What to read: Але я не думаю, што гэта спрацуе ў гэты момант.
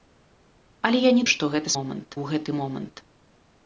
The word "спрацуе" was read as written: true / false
false